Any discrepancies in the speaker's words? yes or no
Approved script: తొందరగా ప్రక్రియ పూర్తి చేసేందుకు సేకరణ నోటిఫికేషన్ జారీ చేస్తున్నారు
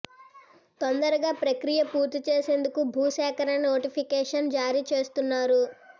yes